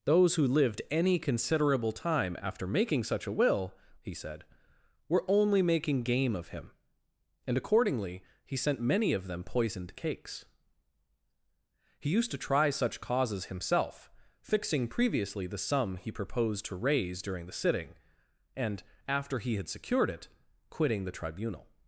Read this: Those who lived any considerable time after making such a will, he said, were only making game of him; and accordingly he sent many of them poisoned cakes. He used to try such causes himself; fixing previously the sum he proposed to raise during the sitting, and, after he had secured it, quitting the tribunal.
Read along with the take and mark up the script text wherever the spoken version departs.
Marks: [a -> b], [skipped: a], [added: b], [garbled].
Those who lived any considerable time after making such a will, he said, were only making game of him; and accordingly he sent many of them poisoned cakes. He used to try such causes himself; fixing previously the sum he proposed to raise during the sitting, and, after he had secured it, quitting the tribunal.